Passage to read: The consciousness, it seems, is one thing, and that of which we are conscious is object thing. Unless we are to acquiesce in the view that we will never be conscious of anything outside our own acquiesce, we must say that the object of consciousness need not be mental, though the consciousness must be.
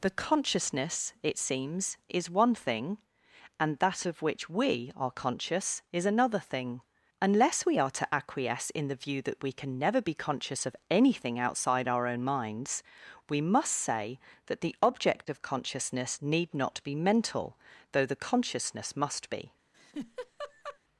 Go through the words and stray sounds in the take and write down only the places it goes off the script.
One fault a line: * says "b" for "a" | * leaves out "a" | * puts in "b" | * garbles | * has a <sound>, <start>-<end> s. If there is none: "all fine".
* says "another" for "object"
* says "can" for "will"
* says "minds" for "acquiesce"
* has a laugh, 19.7-20.8 s